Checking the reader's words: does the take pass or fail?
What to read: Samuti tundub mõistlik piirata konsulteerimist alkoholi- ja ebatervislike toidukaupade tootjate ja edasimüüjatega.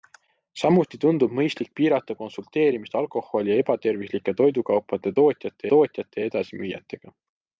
fail